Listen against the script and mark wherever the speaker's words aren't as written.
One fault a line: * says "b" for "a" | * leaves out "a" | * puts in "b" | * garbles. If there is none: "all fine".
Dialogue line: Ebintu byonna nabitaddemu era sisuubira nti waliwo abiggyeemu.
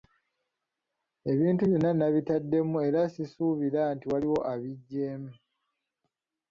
all fine